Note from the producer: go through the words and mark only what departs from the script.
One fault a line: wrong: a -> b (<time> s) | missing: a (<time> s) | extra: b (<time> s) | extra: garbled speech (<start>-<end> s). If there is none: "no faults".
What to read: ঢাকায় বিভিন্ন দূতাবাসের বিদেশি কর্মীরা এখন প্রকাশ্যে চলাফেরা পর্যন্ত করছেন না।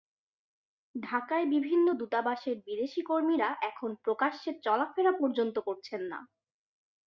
no faults